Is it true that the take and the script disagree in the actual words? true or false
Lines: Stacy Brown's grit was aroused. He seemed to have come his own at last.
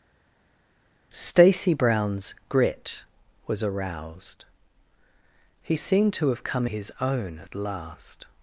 false